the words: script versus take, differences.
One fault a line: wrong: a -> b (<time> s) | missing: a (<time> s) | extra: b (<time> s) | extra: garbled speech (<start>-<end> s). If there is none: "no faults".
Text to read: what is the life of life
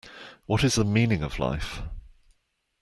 wrong: life -> meaning (0.8 s)